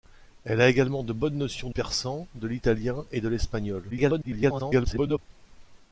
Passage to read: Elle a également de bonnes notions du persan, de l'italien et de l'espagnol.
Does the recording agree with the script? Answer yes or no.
no